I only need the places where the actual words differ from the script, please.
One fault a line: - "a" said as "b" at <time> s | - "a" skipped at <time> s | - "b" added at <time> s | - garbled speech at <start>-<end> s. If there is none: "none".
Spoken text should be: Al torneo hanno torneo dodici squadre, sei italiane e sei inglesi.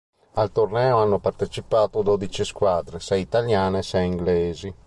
- "torneo" said as "partecipato" at 1.2 s